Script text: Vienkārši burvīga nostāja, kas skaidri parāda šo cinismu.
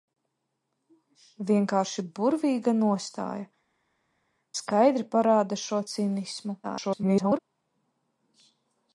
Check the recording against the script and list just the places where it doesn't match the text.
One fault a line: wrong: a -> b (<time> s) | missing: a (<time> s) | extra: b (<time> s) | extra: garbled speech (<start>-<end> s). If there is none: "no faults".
missing: kas (3.5 s)
extra: garbled speech (6.6-7.4 s)